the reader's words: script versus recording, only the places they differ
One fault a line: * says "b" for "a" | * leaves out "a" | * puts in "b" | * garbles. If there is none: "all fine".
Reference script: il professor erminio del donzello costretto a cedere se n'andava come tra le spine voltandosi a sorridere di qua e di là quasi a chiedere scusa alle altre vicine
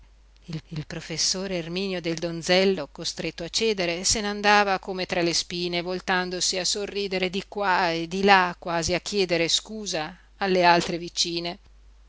* puts in "il"